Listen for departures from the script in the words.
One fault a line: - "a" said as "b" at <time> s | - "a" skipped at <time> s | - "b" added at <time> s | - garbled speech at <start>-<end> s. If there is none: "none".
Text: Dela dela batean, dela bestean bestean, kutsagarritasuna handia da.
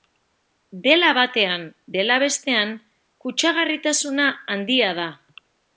- "dela" skipped at 1.1 s
- "bestean" skipped at 2.7 s